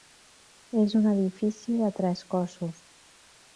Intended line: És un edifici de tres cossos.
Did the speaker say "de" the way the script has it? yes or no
yes